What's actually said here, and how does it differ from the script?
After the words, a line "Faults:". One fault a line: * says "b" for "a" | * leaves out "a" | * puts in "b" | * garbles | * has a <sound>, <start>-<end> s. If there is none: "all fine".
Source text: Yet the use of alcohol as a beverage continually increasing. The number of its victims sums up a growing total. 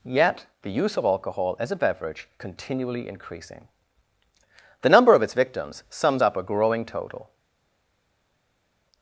Yet the use of alcohol as a beverage continually increasing. The number of its victims sums up a growing total.
Faults:
all fine